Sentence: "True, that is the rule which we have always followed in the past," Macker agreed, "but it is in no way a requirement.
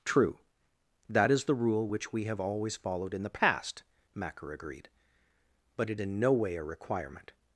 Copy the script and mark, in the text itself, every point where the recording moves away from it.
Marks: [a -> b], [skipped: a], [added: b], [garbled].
"True, that is the rule which we have always followed in the past," Macker agreed, "but it [skipped: is] in no way a requirement.